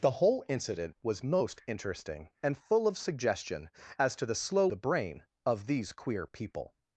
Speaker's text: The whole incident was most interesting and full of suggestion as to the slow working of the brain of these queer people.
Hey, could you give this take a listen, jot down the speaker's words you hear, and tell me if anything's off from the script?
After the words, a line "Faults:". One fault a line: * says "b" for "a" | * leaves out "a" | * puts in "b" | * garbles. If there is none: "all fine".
The whole incident was most interesting and full of suggestion as to the slow the brain of these queer people.
Faults:
* leaves out "working of"